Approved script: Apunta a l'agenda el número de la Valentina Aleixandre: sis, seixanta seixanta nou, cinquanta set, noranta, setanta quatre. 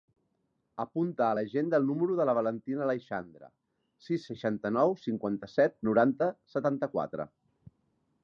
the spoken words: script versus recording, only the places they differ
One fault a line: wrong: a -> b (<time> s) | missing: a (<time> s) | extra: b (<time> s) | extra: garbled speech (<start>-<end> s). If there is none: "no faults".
missing: seixanta (4.7 s)